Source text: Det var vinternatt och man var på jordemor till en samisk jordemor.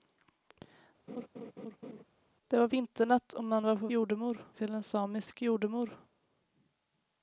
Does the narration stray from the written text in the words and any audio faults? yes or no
yes